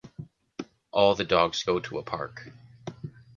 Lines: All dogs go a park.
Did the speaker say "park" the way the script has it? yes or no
yes